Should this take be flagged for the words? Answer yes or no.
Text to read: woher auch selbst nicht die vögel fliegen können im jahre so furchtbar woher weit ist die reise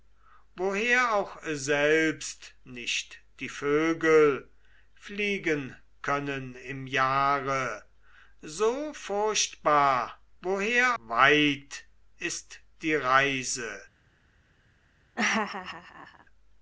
no